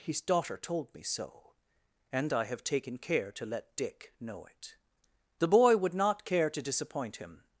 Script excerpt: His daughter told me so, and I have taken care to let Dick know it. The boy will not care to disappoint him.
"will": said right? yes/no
no